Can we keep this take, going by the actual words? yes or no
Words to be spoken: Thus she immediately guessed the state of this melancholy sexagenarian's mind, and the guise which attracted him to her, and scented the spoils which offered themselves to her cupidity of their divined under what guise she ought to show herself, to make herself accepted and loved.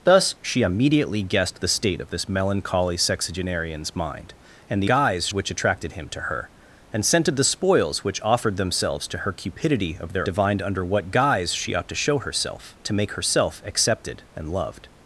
yes